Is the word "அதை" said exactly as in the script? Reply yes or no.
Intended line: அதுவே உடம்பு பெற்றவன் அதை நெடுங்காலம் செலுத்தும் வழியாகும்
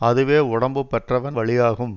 no